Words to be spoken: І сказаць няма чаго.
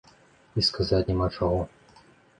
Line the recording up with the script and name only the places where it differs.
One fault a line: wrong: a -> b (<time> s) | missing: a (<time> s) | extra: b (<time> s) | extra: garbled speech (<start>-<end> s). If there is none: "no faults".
no faults